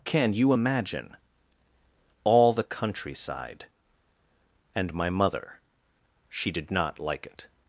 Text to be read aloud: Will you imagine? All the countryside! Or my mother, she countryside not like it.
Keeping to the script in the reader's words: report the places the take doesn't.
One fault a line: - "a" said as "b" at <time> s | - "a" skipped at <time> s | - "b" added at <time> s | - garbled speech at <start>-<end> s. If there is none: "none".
- "Will" said as "Can" at 0.1 s
- "Or" said as "And" at 4.7 s
- "countryside" said as "did" at 6.5 s